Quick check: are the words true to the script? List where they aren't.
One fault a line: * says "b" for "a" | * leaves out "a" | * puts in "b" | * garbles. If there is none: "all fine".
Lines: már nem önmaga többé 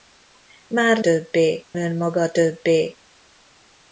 * says "többé" for "nem"